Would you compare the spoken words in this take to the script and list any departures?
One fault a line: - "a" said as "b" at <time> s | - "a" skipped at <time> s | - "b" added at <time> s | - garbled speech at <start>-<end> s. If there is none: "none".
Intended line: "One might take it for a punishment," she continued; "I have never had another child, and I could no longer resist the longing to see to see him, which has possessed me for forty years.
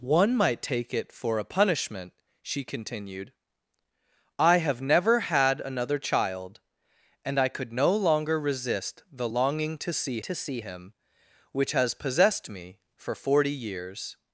none